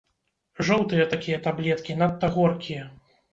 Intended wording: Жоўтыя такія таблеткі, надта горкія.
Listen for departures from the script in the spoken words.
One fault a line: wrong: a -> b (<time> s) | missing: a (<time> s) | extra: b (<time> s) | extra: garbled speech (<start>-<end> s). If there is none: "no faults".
no faults